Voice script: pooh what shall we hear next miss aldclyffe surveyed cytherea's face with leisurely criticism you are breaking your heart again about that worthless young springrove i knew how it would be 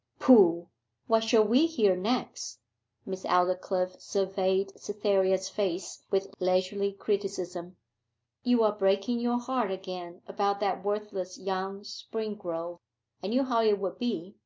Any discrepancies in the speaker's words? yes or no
no